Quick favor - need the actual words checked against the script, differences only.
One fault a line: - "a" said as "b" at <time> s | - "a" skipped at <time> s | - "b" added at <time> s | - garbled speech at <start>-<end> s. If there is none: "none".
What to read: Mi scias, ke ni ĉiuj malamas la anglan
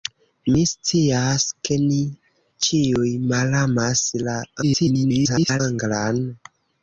- garbled speech at 4.6-5.6 s